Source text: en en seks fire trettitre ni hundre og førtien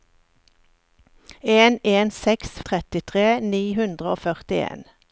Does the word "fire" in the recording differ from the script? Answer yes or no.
yes